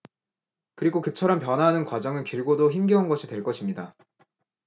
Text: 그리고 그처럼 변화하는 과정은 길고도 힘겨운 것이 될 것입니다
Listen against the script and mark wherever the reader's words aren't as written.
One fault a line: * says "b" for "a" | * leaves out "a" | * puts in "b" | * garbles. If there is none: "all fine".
all fine